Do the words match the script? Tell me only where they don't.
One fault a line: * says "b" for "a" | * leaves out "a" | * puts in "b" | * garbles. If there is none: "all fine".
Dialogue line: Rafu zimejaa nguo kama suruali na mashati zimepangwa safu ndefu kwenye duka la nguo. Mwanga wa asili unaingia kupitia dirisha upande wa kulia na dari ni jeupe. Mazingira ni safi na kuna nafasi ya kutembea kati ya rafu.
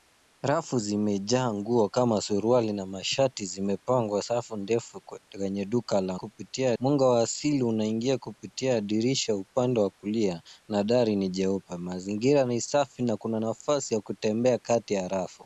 * says "kupitia" for "nguo"